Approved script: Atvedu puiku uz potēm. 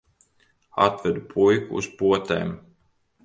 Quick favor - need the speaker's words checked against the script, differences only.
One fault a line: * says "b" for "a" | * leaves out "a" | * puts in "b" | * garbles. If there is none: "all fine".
all fine